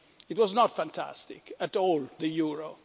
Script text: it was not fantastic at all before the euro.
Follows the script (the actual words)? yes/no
no